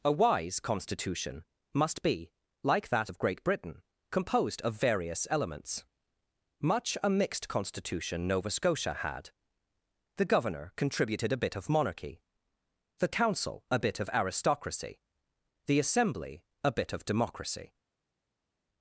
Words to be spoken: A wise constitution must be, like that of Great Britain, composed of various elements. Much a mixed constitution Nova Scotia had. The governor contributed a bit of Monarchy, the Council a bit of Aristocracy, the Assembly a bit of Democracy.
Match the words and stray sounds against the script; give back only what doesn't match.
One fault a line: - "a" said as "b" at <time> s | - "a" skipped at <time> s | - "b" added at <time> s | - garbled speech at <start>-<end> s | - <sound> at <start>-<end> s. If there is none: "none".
none